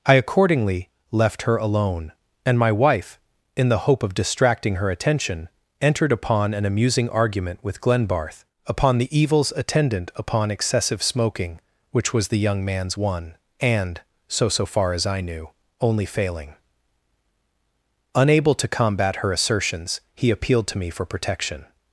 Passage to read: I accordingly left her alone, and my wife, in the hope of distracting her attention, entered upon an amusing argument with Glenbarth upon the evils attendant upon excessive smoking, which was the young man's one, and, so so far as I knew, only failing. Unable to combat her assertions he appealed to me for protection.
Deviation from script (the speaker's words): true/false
false